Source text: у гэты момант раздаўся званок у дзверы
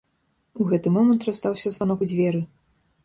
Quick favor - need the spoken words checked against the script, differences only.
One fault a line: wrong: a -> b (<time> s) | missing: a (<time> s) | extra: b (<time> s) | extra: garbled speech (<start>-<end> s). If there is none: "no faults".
no faults